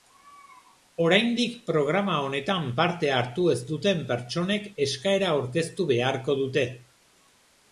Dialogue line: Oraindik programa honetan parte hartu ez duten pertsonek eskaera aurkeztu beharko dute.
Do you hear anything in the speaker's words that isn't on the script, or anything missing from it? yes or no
no